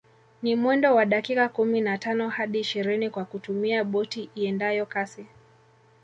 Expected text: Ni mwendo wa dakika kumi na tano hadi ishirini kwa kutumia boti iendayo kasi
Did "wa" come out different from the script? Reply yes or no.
no